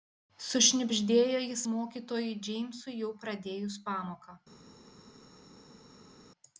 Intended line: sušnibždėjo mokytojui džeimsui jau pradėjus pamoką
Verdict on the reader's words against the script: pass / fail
fail